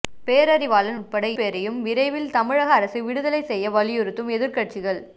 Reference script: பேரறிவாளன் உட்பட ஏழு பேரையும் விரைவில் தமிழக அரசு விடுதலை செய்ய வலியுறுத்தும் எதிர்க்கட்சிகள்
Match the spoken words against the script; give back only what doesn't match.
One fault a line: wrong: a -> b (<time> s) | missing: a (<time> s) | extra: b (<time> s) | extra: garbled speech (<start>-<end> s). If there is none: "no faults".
missing: ஏழு (1.3 s)